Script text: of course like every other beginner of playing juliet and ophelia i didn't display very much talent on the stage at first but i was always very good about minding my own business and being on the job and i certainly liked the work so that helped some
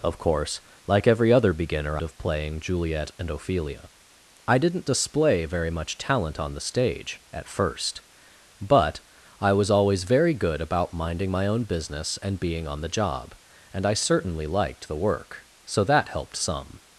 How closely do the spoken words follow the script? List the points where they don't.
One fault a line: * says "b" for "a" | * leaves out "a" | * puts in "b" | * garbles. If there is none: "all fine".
all fine